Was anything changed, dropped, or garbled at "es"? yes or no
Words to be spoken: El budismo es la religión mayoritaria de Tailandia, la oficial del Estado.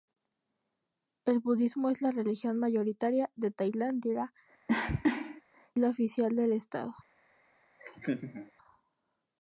no